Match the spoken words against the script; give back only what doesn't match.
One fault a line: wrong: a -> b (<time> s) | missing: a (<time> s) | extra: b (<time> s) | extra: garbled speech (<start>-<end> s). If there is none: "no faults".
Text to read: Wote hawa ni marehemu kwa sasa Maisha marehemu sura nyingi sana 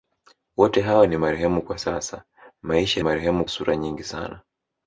no faults